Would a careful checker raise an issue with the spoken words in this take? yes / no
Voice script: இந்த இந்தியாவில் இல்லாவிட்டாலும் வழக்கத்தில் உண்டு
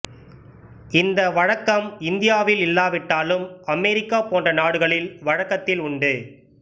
yes